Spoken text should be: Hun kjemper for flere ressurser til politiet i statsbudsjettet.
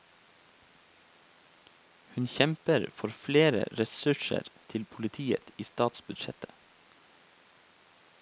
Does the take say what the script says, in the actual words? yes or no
yes